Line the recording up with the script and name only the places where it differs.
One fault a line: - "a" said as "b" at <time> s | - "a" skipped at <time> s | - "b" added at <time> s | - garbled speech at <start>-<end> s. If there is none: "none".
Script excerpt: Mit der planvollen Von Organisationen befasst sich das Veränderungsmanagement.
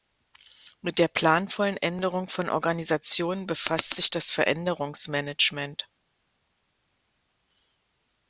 - "Änderung" added at 1.8 s